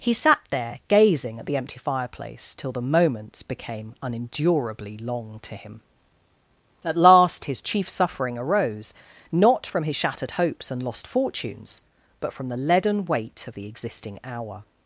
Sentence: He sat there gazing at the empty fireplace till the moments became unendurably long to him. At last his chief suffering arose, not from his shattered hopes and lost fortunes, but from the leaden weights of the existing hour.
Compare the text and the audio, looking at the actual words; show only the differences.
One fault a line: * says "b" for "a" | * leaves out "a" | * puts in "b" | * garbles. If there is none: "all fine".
* says "weight" for "weights"